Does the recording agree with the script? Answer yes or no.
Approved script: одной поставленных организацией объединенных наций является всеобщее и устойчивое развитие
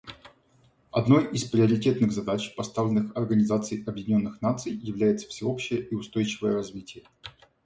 no